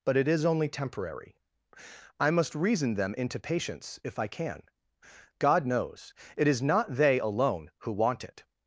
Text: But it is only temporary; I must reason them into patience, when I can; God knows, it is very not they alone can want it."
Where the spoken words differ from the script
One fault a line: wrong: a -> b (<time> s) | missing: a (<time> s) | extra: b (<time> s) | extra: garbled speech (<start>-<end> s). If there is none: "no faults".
wrong: when -> if (4.0 s)
missing: very (6.6 s)
wrong: can -> who (7.8 s)